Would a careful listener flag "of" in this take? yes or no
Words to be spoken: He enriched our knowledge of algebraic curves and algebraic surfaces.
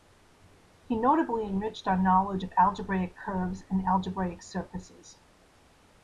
no